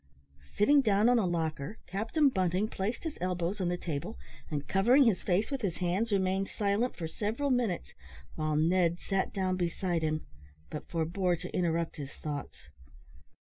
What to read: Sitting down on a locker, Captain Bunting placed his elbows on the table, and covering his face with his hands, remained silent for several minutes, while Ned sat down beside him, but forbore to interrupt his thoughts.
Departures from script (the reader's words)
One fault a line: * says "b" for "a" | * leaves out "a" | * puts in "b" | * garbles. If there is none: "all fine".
all fine